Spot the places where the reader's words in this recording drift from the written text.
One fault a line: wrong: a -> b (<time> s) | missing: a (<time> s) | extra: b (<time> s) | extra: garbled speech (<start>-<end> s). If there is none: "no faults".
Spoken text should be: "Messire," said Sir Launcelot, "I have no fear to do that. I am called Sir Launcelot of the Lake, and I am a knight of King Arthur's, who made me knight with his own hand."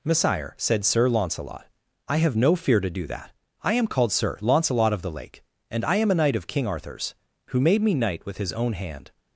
no faults